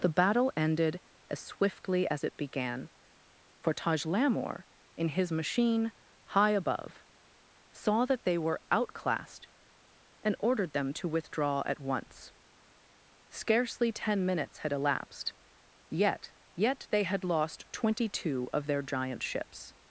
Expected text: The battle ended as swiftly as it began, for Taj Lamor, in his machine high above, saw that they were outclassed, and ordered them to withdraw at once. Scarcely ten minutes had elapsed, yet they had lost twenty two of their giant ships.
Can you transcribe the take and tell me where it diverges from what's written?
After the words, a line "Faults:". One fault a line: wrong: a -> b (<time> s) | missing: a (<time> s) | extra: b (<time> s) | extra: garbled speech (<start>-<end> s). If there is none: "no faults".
The battle ended as swiftly as it began, for Taj Lamor, in his machine high above, saw that they were outclassed, and ordered them to withdraw at once. Scarcely ten minutes had elapsed, yet yet they had lost twenty two of their giant ships.
Faults:
extra: yet (16.6 s)